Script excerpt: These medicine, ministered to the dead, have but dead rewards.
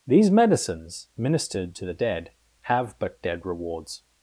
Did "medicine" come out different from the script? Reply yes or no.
yes